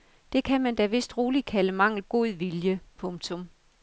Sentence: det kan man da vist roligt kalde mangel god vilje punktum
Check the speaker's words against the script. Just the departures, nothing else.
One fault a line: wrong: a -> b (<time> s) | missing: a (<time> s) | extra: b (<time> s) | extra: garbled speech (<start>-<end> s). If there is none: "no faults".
no faults